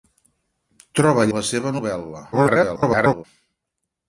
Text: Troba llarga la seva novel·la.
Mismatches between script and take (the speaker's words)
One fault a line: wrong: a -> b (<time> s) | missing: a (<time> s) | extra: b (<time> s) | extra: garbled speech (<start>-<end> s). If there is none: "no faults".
missing: llarga (1.3 s)
extra: garbled speech (2.3-3.2 s)